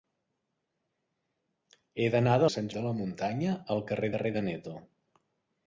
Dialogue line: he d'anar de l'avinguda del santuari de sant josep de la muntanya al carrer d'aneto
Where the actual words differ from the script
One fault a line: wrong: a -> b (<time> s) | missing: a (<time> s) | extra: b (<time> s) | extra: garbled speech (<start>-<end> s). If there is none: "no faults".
missing: l'avinguda del santuari (2.5 s)
missing: josep (2.7 s)
extra: carrer (4.2 s)